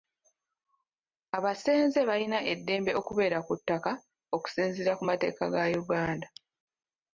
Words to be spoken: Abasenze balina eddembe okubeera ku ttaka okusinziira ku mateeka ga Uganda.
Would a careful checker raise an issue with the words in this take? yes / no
no